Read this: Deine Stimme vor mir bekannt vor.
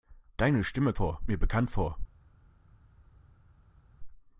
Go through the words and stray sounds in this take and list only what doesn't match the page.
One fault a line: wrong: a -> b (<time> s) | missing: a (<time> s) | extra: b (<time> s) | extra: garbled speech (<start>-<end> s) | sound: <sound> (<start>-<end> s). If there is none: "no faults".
no faults